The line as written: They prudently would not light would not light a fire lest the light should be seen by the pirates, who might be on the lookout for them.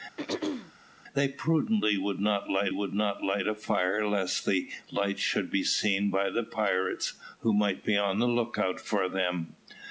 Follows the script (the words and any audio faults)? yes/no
no